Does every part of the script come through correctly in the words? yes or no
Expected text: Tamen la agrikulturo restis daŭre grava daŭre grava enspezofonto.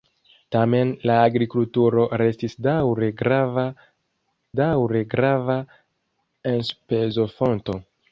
yes